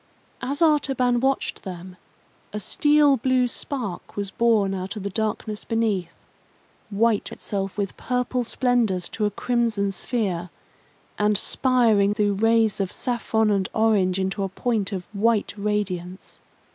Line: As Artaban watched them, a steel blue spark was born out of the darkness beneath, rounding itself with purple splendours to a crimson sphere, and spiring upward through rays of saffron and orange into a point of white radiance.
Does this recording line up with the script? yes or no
no